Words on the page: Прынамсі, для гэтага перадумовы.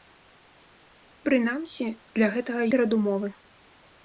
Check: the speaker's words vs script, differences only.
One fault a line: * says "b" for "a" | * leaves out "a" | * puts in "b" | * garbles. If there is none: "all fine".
all fine